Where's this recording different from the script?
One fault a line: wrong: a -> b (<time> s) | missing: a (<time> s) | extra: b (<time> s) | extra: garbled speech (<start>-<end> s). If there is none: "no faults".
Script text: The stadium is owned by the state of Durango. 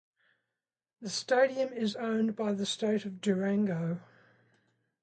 no faults